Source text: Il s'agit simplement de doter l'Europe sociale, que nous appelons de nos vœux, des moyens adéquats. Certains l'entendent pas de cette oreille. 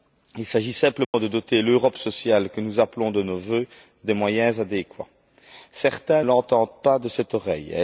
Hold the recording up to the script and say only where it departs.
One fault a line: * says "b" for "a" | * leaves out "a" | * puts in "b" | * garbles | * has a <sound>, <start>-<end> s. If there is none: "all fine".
* has a dropout, 1.0-1.1 s